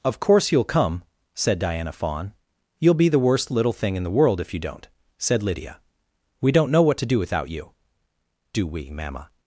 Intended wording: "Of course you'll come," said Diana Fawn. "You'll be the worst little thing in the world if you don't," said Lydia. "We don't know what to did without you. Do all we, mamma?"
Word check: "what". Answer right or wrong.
right